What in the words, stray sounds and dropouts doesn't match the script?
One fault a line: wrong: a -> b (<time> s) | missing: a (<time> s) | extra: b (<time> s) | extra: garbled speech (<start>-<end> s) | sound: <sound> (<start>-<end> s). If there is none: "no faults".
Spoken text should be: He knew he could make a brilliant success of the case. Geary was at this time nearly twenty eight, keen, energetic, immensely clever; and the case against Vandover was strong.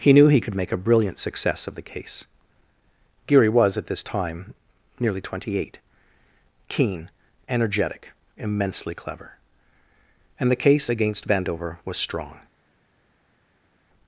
no faults